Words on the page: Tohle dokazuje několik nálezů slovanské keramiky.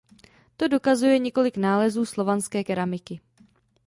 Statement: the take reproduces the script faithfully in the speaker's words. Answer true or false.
false